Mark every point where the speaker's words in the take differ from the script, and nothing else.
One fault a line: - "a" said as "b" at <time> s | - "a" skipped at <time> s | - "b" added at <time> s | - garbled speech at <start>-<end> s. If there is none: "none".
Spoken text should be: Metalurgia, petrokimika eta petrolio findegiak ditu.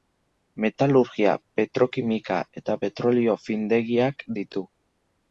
none